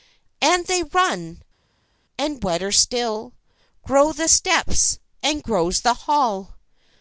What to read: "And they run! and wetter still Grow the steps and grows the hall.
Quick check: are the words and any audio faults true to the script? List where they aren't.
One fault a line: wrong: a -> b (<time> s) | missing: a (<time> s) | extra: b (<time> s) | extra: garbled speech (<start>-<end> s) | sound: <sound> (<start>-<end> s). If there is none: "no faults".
no faults